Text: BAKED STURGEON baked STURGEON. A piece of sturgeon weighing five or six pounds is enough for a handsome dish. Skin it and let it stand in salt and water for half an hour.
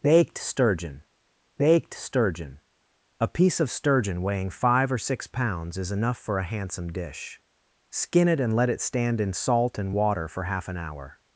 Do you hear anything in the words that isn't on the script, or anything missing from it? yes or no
no